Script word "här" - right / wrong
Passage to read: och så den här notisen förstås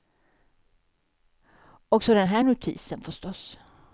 right